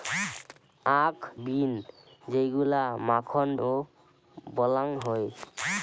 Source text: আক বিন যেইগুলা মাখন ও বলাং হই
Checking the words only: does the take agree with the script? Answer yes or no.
yes